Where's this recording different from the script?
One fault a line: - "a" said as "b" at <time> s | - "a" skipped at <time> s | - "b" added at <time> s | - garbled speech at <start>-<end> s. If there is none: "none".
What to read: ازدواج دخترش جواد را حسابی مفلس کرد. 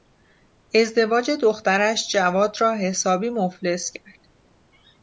none